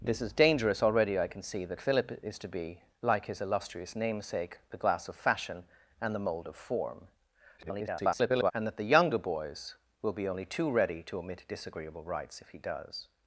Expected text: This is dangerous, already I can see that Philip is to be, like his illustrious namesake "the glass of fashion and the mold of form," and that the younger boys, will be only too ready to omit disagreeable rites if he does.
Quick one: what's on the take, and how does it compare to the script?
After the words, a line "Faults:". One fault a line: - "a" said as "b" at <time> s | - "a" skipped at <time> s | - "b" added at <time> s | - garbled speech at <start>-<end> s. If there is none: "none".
This is dangerous, already I can see that Philip is to be, like his illustrious namesake "the glass of fashion and the mold of form," [garbled] and that the younger boys, will be only too ready to omit disagreeable rites if he does.
Faults:
- garbled speech at 7.6-8.5 s